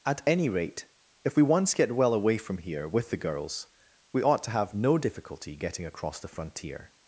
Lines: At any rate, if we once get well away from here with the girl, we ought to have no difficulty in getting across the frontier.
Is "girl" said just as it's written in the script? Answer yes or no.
no